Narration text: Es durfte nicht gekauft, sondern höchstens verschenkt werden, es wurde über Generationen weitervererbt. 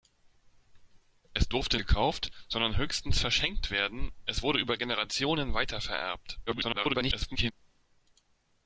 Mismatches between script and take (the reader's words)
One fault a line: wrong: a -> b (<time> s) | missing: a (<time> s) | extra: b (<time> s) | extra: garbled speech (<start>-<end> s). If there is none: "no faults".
missing: nicht (1.8 s)
extra: garbled speech (6.5-7.5 s)